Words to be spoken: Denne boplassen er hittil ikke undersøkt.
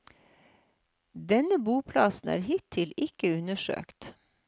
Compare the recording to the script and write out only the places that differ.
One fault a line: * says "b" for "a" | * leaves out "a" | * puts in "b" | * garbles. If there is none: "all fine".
all fine